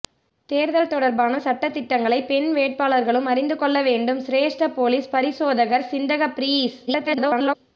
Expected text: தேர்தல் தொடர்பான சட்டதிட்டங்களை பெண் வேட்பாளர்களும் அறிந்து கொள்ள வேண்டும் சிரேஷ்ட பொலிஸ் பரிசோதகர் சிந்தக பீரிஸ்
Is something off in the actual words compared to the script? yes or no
yes